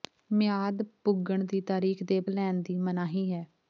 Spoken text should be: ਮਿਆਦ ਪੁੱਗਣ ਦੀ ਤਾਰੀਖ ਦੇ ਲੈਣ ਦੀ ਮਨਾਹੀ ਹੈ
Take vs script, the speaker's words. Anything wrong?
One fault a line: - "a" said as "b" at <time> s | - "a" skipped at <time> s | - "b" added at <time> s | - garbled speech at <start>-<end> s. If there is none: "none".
none